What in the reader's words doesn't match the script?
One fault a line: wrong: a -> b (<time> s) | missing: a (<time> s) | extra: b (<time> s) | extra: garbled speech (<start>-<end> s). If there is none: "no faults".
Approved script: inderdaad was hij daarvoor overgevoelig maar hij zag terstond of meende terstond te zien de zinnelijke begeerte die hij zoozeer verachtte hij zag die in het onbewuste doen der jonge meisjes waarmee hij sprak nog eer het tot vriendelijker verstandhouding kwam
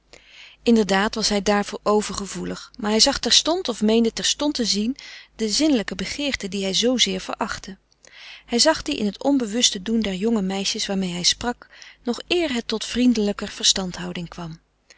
no faults